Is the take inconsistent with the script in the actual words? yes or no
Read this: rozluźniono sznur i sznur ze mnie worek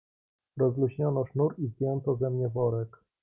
yes